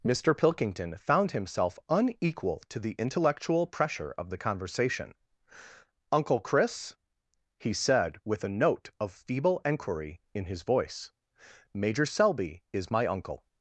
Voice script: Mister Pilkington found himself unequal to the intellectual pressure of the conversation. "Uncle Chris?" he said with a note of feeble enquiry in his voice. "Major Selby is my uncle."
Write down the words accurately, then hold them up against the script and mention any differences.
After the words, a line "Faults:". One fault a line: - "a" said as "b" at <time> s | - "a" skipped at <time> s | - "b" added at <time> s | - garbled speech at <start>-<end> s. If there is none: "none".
Mister Pilkington found himself unequal to the intellectual pressure of the conversation. "Uncle Chris?" he said with a note of feeble enquiry in his voice. "Major Selby is my uncle."
Faults:
none